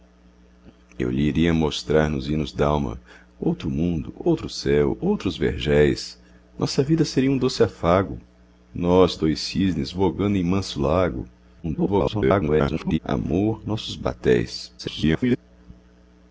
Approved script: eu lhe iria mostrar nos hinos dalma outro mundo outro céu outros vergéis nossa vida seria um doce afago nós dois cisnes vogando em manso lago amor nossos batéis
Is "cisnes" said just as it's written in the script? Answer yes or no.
yes